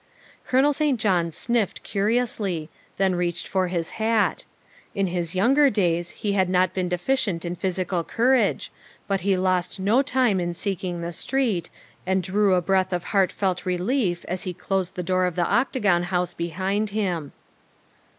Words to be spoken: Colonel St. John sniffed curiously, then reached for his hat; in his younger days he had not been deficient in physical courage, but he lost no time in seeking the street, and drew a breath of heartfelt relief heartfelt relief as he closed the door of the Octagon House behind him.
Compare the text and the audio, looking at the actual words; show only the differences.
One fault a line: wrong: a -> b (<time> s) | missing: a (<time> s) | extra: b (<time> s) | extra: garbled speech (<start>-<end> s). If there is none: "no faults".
missing: heartfelt relief (14.2 s)